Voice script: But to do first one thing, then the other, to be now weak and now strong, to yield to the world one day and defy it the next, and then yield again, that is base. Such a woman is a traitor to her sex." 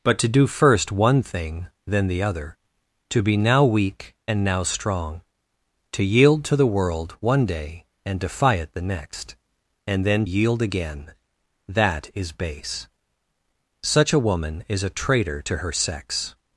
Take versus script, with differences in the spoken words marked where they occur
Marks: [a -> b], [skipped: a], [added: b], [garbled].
But to do first one thing, then the other, to be now weak and now strong, to yield to the world one day and defy it the next, and then yield again, that is base. Such a woman is a traitor to her sex."